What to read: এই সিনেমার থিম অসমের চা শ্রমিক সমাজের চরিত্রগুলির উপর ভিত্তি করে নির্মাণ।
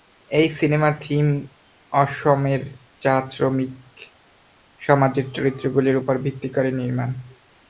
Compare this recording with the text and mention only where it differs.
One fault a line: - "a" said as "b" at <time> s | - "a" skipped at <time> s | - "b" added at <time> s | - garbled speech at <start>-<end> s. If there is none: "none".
none